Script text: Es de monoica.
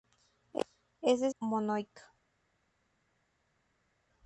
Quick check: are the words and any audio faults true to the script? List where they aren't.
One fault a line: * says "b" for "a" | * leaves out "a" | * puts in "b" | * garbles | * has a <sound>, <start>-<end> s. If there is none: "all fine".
all fine